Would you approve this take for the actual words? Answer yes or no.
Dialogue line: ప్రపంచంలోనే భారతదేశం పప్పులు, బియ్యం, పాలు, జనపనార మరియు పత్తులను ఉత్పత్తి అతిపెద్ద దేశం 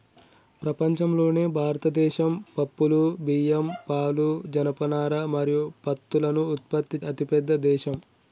yes